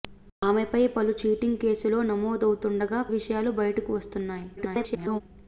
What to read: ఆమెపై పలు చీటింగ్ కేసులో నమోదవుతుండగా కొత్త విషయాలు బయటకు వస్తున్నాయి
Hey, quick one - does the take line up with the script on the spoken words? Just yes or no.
no